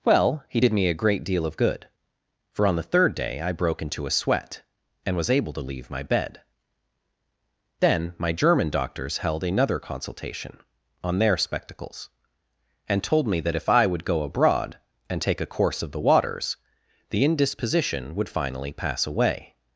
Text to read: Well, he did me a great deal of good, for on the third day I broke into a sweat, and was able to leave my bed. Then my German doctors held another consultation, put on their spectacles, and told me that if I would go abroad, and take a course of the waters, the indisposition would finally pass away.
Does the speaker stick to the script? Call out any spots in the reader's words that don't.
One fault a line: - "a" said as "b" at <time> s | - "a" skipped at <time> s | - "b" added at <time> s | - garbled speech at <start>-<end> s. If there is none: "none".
- "put" skipped at 10.6 s